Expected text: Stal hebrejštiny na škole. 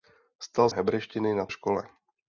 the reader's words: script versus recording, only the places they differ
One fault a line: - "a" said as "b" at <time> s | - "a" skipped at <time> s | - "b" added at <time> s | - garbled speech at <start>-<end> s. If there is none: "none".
none